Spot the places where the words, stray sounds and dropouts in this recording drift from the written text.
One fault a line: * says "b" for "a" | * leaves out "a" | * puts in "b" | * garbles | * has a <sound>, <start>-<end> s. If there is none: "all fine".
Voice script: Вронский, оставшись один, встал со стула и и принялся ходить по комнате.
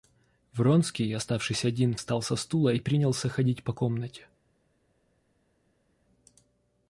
* leaves out "и"